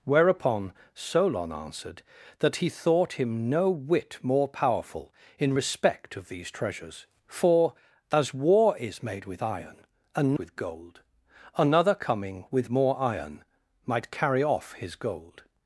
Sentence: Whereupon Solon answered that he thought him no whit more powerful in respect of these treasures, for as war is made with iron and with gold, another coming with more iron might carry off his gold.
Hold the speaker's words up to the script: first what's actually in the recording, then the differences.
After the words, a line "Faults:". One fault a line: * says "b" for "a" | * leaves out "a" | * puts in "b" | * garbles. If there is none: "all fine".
Whereupon Solon answered that he thought him no whit more powerful in respect of these treasures, for as war is made with iron and with gold, another coming with more iron might carry off his gold.
Faults:
all fine